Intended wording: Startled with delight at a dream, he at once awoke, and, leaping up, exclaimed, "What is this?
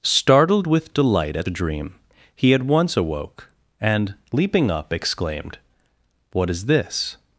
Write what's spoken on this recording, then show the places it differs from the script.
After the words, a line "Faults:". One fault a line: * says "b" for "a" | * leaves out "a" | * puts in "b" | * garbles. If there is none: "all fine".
Startled with delight at a dream, he at once awoke, and, leaping up, exclaimed, "What is this?
Faults:
all fine